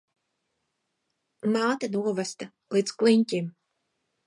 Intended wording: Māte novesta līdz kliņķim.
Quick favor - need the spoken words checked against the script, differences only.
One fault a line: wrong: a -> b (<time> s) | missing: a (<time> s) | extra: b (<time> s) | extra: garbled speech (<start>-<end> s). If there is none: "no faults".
no faults